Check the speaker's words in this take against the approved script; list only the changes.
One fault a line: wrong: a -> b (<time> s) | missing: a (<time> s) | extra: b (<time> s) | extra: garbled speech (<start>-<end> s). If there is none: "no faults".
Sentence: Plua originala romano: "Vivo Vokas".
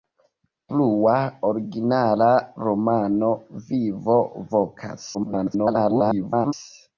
extra: garbled speech (5.1-6.5 s)